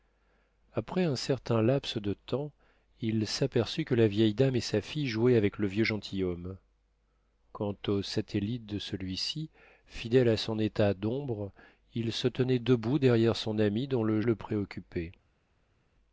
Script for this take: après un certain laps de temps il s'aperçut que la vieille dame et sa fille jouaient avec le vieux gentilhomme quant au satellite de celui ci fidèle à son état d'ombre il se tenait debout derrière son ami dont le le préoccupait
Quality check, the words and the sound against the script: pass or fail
pass